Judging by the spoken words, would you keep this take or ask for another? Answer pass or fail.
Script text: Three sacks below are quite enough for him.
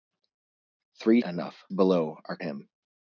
fail